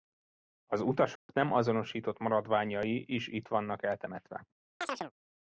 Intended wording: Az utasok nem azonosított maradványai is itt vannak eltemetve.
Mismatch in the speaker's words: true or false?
false